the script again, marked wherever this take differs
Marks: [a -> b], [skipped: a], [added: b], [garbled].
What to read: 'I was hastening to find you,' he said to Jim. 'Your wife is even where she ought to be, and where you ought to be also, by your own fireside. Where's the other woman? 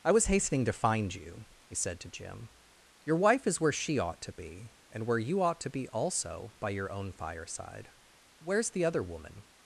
'I was hastening to find you,' he said to Jim. 'Your wife is [skipped: even] where she ought to be, and where you ought to be also, by your own fireside. Where's the other woman?